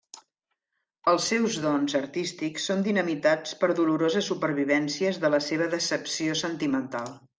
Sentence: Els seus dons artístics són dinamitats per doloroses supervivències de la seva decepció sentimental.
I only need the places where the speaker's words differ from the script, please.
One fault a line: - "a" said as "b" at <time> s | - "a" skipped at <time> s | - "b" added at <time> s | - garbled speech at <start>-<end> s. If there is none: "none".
none